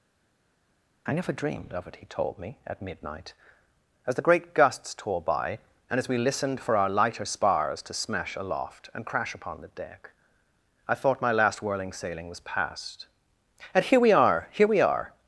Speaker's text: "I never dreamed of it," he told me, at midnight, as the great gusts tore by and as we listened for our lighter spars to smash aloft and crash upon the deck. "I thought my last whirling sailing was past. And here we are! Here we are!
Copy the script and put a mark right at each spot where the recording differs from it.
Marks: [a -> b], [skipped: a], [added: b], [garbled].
"I never dreamed of it," he told me, at midnight, as the great gusts tore by and as we listened for our lighter spars to smash aloft and crash upon the deck. "I thought my last whirling sailing was past. And here we are! Here we are!